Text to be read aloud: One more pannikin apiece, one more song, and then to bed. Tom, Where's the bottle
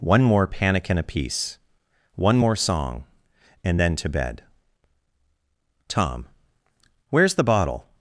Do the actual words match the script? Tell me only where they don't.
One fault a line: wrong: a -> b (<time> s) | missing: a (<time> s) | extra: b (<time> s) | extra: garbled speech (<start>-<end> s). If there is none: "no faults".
no faults